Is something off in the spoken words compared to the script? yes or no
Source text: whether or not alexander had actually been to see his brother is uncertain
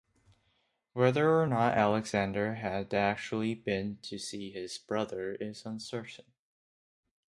no